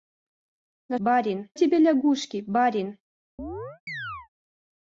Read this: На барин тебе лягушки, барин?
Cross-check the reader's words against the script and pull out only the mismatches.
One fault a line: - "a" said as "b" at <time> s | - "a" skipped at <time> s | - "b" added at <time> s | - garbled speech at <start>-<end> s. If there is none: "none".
none